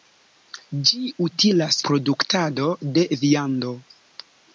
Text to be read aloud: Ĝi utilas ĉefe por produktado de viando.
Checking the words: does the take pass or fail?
fail